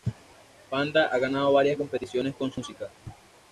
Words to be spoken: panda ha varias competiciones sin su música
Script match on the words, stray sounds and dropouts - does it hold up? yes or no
no